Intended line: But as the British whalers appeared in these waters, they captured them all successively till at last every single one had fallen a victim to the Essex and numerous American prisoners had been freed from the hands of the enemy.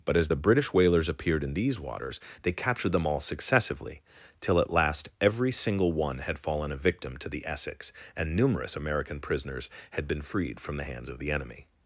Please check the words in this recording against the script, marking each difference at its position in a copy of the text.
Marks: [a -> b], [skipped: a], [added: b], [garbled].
But as the British whalers appeared in these waters, they captured them all successively till at last every single one had fallen a victim to the Essex and numerous American prisoners had been freed from the hands of the enemy.